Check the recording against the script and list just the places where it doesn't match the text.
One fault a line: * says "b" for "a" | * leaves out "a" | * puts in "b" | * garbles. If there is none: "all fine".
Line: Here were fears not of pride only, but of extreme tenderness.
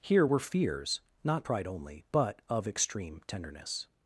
* leaves out "of"